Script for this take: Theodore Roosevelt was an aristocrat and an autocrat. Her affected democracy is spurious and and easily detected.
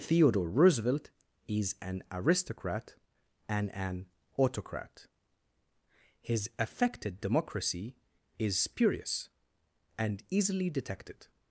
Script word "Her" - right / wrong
wrong